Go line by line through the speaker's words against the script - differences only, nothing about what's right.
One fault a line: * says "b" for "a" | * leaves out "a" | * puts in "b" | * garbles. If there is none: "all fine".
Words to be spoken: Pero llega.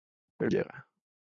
all fine